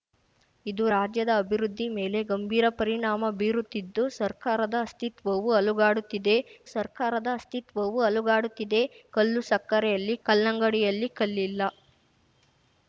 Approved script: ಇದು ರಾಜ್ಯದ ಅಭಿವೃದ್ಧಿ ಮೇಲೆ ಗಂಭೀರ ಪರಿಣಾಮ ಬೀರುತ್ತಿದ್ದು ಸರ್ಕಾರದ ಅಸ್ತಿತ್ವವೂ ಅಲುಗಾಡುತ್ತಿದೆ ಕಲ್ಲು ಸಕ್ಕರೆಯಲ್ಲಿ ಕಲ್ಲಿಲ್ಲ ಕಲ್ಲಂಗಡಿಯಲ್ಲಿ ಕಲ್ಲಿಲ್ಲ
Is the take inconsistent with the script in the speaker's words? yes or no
yes